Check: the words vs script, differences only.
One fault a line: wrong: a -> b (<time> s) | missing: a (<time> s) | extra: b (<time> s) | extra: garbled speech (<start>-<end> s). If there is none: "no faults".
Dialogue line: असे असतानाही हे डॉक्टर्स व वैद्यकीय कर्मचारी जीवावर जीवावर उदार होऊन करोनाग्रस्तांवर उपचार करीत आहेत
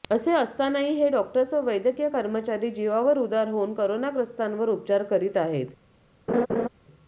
missing: जीवावर (3.2 s)